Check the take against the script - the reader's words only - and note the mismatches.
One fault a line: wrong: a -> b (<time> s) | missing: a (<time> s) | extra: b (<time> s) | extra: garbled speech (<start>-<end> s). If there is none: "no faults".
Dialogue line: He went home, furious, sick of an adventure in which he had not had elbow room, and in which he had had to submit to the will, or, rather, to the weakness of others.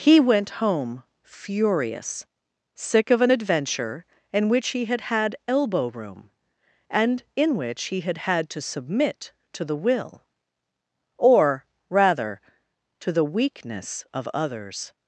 missing: not (5.0 s)